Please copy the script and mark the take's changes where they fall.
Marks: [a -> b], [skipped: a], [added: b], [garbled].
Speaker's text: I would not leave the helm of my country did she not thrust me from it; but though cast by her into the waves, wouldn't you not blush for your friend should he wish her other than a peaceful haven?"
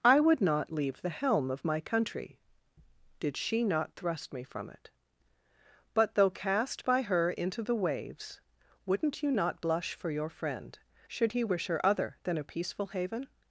I would not leave the helm of my country did she not thrust me from it; but though cast by her into the waves, wouldn't you not blush for your friend should he wish her other than a peaceful haven?"